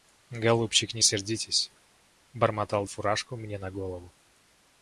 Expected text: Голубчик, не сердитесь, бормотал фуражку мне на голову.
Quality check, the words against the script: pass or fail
pass